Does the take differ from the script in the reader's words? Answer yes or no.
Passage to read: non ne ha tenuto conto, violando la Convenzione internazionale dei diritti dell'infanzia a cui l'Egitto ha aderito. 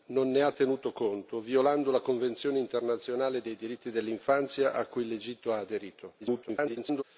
yes